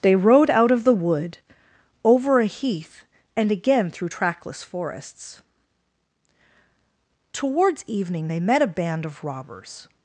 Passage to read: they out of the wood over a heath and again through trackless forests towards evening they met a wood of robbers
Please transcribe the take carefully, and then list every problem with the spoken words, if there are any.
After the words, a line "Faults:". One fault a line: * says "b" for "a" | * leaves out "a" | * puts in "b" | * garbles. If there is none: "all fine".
they rode out of the wood over a heath and again through trackless forests towards evening they met a band of robbers
Faults:
* puts in "rode"
* says "band" for "wood"